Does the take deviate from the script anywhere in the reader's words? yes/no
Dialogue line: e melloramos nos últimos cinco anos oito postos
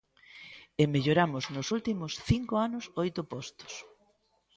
no